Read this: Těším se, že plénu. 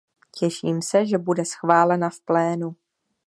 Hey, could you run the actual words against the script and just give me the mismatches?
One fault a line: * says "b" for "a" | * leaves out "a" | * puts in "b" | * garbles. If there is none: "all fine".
* puts in "bude schválena v"